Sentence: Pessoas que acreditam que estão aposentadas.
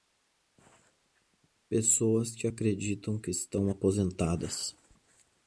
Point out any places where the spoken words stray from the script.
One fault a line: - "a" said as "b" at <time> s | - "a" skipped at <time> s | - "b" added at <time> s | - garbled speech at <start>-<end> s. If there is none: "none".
none